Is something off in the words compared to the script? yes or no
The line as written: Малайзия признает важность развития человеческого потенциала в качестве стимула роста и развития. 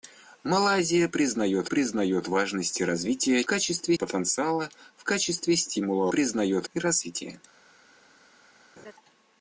yes